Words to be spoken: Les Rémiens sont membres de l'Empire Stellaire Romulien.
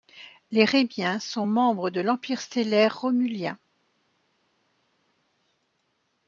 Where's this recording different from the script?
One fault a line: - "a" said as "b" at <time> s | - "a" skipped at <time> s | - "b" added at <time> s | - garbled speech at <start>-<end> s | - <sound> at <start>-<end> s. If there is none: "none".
none